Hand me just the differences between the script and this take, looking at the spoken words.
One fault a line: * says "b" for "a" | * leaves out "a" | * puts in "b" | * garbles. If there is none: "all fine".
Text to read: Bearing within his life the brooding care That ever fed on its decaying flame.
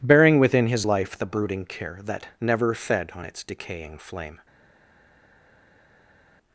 * says "never" for "ever"